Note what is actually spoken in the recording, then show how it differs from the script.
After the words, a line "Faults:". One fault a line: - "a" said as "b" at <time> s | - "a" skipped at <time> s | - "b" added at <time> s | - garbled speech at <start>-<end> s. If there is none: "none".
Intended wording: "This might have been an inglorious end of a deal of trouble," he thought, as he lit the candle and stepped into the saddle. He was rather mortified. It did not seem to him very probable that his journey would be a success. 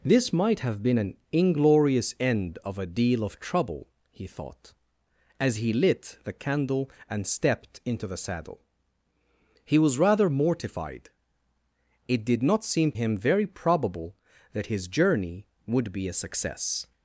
"This might have been an inglorious end of a deal of trouble," he thought, as he lit the candle and stepped into the saddle. He was rather mortified. It did not seem him very probable that his journey would be a success.
Faults:
- "to" skipped at 12.9 s